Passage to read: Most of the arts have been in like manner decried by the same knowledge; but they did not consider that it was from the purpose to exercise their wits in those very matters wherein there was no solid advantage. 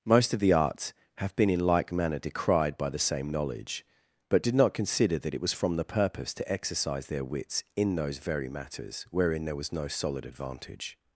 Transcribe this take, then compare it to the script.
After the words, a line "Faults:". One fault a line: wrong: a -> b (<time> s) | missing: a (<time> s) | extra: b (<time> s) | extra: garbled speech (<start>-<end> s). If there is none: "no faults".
Most of the arts have been in like manner decried by the same knowledge; but did not consider that it was from the purpose to exercise their wits in those very matters wherein there was no solid advantage.
Faults:
missing: they (4.4 s)